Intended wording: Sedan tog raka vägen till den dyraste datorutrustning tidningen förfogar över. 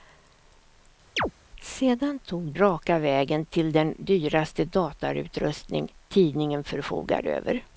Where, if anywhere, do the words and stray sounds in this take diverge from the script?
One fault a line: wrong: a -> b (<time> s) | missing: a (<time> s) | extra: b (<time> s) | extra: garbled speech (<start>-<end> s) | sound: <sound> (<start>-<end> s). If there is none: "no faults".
sound: chirp (1.2-1.3 s)